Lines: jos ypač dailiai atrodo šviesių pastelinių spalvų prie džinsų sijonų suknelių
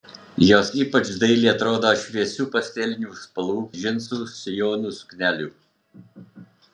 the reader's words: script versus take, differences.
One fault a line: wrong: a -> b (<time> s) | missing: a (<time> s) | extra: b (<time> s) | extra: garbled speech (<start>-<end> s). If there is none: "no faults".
missing: prie (3.6 s)